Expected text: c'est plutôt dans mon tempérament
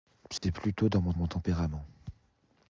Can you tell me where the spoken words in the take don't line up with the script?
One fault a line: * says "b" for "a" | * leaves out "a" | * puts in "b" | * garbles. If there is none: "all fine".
* puts in "mon"